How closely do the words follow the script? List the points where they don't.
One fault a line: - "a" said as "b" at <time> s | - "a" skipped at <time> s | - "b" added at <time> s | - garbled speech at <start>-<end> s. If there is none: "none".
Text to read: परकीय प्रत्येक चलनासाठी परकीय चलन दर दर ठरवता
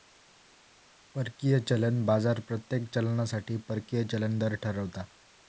- "चलन बाजार" added at 1.6 s
- "दर" skipped at 4.5 s